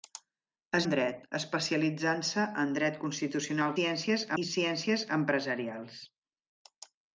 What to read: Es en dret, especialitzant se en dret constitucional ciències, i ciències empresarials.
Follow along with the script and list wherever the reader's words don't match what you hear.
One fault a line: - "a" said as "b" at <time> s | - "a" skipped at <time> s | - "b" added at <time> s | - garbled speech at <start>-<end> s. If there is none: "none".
none